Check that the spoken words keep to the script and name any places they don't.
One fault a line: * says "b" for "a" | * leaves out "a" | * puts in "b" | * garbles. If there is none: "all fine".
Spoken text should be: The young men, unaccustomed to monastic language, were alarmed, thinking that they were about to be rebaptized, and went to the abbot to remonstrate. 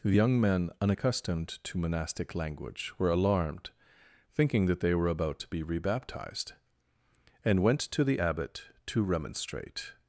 all fine